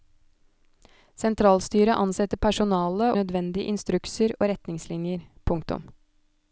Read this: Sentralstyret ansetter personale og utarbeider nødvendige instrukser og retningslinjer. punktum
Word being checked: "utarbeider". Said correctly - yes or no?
no